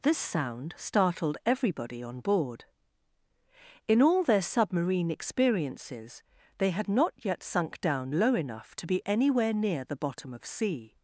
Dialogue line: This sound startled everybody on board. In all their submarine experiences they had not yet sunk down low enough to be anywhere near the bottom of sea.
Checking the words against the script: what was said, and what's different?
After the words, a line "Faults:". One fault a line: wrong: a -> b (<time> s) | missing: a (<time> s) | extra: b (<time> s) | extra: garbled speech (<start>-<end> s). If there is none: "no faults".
This sound startled everybody on board. In all their submarine experiences they had not yet sunk down low enough to be anywhere near the bottom of sea.
Faults:
no faults